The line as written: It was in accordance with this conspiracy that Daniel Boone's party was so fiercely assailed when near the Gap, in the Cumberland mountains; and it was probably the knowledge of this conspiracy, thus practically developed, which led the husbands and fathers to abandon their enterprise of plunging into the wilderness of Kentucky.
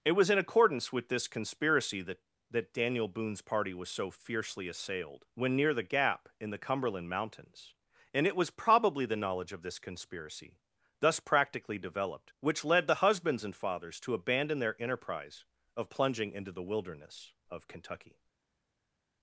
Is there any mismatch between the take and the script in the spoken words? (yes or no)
yes